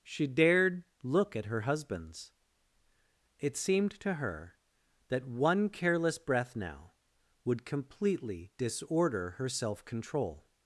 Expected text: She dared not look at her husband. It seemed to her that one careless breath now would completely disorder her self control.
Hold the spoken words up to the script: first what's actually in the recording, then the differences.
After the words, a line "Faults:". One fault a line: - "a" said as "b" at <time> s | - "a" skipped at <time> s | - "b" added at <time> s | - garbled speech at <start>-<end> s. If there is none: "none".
She dared look at her husbands. It seemed to her that one careless breath now would completely disorder her self control.
Faults:
- "not" skipped at 0.8 s
- "husband" said as "husbands" at 1.6 s